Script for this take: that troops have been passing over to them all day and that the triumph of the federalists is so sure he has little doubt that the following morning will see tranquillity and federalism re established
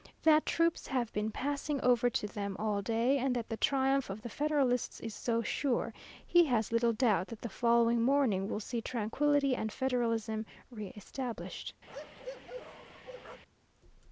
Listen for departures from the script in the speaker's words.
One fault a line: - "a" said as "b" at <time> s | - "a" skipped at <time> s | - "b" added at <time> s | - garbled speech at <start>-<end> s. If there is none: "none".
none